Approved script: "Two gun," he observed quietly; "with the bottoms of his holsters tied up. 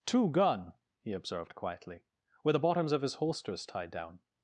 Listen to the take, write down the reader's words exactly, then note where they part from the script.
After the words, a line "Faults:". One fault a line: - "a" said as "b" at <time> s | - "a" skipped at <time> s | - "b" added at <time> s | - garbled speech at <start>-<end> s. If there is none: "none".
"Two gun," he observed quietly; "with the bottoms of his holsters tied down.
Faults:
- "up" said as "down" at 3.9 s